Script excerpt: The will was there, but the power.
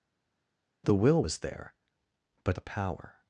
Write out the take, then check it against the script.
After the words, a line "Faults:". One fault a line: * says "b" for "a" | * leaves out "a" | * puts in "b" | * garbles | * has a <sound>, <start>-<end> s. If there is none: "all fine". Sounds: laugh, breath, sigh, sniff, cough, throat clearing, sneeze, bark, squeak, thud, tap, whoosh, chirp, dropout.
The will was there, but the power.
Faults:
all fine